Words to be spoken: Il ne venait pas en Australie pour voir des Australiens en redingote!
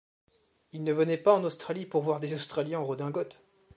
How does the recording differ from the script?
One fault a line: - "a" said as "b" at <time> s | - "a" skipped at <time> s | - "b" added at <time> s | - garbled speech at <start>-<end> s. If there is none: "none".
none